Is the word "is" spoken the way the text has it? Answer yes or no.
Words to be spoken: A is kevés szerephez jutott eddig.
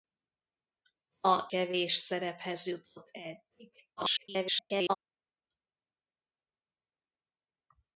no